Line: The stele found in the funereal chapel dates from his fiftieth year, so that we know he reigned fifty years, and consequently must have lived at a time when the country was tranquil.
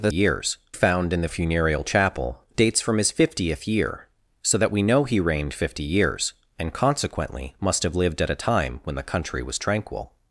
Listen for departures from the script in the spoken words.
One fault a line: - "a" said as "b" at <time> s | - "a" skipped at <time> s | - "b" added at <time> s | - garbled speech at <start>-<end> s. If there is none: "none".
- "stele" said as "years" at 0.1 s